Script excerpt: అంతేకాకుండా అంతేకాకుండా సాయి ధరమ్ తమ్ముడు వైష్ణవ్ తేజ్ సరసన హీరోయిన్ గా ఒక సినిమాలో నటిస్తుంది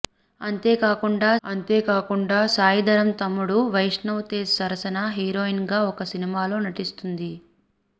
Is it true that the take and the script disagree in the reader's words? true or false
false